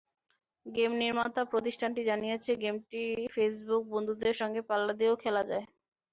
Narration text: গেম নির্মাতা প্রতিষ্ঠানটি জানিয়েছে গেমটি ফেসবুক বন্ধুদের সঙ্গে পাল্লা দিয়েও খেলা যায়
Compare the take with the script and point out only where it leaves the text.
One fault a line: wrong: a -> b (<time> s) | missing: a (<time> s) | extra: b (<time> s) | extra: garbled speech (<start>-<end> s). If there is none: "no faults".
no faults